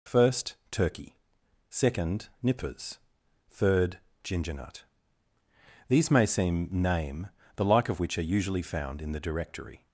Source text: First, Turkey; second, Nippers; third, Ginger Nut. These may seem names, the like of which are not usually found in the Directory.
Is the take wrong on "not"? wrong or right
wrong